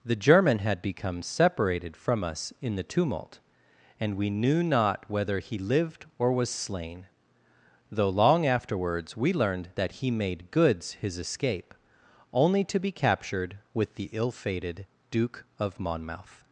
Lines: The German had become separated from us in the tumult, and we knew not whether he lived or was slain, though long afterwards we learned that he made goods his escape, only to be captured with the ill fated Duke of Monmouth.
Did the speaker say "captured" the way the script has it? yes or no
yes